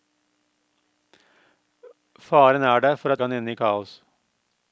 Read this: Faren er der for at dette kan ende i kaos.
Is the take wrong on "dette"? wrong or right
wrong